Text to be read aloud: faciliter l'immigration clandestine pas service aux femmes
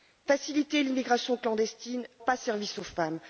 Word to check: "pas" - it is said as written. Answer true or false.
true